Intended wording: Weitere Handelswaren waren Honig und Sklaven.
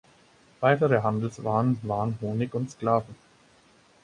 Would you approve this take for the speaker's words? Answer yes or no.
yes